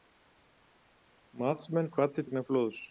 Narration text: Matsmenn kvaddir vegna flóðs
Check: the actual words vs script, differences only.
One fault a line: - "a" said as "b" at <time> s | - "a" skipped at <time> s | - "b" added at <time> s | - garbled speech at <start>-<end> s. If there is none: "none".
none